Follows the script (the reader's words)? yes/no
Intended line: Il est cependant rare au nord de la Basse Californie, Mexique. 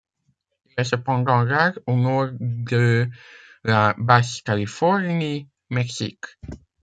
yes